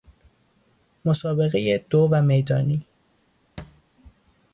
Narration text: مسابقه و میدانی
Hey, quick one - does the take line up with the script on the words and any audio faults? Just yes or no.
no